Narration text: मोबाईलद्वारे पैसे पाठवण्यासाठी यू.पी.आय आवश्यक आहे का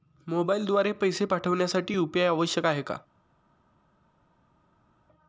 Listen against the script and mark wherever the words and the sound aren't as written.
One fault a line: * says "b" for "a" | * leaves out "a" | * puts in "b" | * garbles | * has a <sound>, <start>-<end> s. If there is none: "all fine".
all fine